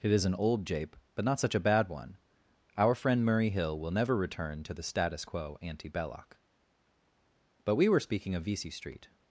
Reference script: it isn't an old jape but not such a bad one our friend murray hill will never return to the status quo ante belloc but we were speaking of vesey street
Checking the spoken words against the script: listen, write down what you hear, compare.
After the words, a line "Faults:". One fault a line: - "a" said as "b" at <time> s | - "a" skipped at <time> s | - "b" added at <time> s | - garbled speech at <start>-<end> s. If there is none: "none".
it is an old jape but not such a bad one our friend murray hill will never return to the status quo ante belloc but we were speaking of vesey street
Faults:
- "isn't" said as "is" at 0.1 s